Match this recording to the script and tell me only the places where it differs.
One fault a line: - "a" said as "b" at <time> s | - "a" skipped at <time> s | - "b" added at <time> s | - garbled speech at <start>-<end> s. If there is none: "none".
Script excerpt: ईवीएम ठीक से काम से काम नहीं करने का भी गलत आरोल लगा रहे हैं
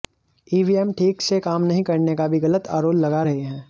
- "से काम" skipped at 1.6 s